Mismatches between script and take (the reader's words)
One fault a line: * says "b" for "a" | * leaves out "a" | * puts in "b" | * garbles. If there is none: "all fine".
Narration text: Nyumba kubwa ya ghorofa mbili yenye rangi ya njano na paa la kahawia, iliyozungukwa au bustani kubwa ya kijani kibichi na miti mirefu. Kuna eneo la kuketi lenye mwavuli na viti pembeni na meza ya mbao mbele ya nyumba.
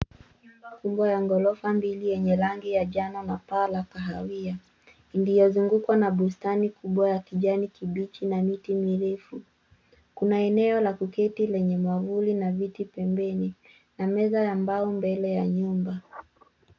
* says "na" for "au"